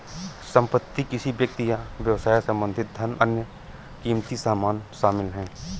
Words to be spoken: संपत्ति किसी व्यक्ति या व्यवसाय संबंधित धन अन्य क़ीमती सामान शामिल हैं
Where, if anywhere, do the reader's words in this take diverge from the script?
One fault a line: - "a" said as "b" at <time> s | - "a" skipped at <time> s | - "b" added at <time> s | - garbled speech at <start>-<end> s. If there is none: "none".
none